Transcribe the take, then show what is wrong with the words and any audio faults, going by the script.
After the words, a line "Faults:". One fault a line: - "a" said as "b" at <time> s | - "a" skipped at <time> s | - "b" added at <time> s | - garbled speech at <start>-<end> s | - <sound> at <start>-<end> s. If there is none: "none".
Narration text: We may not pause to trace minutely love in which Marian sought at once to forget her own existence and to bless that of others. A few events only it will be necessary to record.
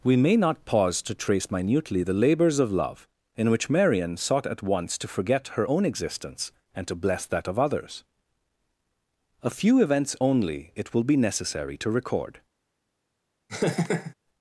We may not pause to trace minutely the labors of love in which Marian sought at once to forget her own existence and to bless that of others. A few events only it will be necessary to record.
Faults:
- "the labors of" added at 2.0 s
- laugh at 13.5-14.1 s